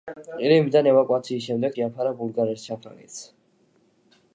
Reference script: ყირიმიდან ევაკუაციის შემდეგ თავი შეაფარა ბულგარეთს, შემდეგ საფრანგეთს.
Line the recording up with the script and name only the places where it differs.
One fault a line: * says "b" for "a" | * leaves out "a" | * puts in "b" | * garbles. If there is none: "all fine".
* leaves out "თავი"
* leaves out "შემდეგ"